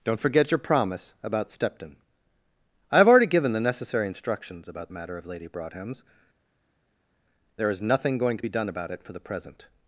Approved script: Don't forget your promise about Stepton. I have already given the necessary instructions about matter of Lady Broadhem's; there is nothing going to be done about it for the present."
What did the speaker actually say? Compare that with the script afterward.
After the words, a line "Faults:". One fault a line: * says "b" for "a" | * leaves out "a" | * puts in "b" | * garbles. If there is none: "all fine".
Don't forget your promise about Stepton. I have already given the necessary instructions about matter of Lady Broadhem's; there is nothing going to be done about it for the present."
Faults:
all fine